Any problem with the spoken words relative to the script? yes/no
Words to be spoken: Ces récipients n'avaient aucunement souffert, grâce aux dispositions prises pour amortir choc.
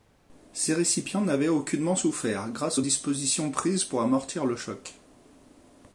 yes